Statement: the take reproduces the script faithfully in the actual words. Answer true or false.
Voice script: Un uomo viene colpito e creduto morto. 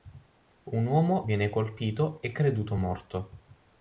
true